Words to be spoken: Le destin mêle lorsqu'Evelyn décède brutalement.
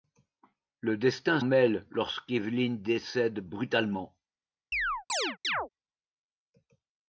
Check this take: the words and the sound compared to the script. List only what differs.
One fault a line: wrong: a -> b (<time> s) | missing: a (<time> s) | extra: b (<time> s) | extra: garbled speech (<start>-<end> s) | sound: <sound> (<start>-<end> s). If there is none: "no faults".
sound: chirp (4.7-5.7 s)